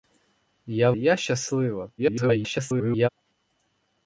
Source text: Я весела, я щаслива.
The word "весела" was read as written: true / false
false